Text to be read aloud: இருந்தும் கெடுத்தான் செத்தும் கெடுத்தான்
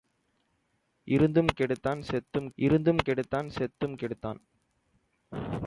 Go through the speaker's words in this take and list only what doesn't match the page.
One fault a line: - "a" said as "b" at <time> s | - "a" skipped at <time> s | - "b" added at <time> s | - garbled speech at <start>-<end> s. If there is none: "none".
- "இருந்தும் கெடுத்தான் செத்தும்" added at 2.6 s